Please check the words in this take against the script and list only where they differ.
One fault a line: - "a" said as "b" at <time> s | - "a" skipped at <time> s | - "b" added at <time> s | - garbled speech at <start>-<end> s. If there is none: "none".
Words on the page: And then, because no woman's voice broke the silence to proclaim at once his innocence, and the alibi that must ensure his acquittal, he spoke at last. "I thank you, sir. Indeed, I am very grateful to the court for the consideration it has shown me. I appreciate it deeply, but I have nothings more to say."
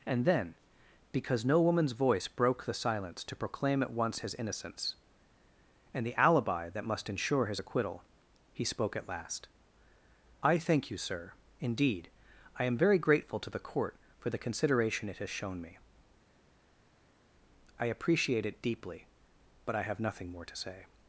- "nothings" said as "nothing" at 20.0 s